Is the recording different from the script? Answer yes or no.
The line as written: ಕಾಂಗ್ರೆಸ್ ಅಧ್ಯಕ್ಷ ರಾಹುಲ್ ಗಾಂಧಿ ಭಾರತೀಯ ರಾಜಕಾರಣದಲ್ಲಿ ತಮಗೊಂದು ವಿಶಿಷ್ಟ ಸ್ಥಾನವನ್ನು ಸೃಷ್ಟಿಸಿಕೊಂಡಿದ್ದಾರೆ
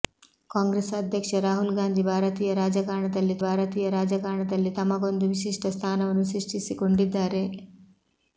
yes